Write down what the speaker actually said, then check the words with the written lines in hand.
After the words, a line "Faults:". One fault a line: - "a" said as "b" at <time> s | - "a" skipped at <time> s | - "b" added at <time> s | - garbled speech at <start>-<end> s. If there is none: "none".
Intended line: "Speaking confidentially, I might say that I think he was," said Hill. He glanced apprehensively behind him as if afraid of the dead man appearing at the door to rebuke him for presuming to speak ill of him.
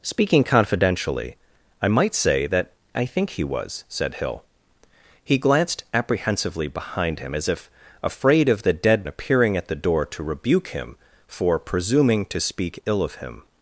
"Speaking confidentially, I might say that I think he was," said Hill. He glanced apprehensively behind him as if afraid of the dead appearing at the door to rebuke him for presuming to speak ill of him.
Faults:
- "man" skipped at 9.1 s